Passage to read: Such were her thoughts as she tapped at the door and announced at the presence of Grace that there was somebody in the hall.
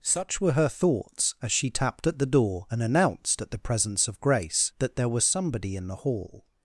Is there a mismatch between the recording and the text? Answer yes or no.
no